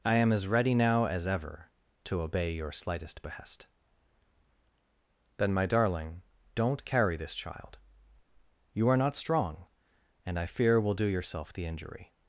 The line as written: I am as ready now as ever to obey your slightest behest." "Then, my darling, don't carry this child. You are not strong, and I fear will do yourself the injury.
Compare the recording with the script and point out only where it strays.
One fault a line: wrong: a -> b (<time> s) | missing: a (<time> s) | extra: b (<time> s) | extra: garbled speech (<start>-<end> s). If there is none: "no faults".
no faults